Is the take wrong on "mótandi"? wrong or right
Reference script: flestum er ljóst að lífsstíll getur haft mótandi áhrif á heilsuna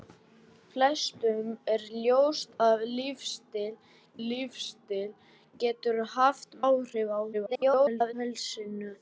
wrong